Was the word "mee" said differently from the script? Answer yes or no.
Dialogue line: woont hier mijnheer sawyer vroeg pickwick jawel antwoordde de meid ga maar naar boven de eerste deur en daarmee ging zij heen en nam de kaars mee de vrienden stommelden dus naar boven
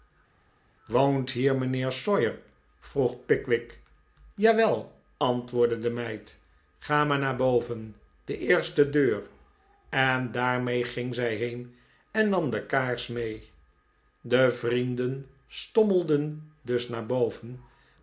no